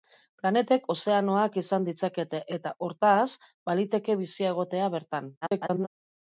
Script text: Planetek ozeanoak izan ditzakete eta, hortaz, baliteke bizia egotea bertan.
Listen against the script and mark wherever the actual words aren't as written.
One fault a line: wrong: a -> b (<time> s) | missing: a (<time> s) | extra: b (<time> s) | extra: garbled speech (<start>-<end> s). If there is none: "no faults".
extra: garbled speech (5.4-5.9 s)